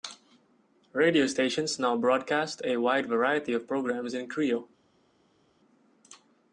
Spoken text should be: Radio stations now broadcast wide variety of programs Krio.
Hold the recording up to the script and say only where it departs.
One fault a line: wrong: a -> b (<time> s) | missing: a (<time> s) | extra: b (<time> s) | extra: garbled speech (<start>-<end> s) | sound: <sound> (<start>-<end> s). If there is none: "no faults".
extra: a (2.6 s)
extra: in (4.1 s)